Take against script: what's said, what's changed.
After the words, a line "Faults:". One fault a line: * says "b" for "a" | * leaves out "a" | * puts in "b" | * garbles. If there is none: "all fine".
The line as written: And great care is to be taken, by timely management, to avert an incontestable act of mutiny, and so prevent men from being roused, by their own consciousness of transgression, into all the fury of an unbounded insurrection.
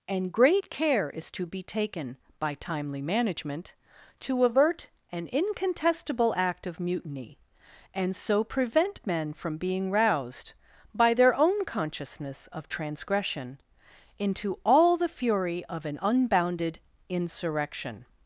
And great care is to be taken, by timely management, to avert an incontestable act of mutiny, and so prevent men from being roused, by their own consciousness of transgression, into all the fury of an unbounded insurrection.
Faults:
all fine